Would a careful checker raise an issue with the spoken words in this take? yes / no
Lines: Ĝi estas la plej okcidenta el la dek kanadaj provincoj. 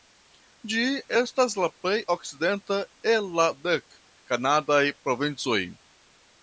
no